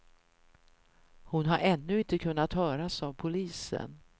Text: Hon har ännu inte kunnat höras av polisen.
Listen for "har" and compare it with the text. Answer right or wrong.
right